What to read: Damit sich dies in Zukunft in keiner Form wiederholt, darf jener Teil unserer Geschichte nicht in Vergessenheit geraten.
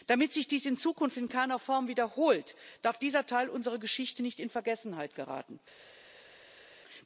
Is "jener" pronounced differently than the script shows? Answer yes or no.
yes